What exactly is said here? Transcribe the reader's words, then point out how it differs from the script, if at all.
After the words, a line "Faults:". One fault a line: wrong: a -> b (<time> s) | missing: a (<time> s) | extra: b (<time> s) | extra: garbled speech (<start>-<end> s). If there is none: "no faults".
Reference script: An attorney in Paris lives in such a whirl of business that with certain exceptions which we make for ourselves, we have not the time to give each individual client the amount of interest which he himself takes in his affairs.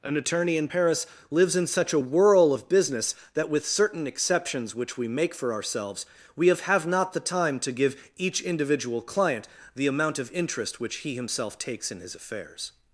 An attorney in Paris lives in such a whirl of business that with certain exceptions which we make for ourselves, we have have not the time to give each individual client the amount of interest which he himself takes in his affairs.
Faults:
extra: have (6.6 s)